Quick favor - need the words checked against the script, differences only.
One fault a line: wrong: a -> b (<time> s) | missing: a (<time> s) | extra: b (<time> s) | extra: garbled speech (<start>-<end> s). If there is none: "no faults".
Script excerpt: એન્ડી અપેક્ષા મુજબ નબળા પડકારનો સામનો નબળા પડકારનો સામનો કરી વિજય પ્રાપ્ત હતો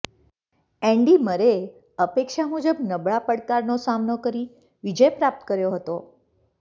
extra: મરેએ (1.2 s)
missing: નબળા પડકારનો સામનો (4.2 s)
extra: કર્યો (5.5 s)